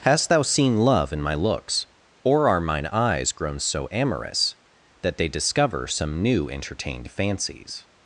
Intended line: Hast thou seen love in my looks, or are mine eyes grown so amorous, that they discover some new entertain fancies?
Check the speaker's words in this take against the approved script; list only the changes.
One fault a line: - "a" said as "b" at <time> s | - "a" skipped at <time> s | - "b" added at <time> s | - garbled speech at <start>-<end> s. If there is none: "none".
- "entertain" said as "entertained" at 6.5 s